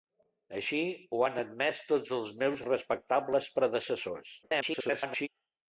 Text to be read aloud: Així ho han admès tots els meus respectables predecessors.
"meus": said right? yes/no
yes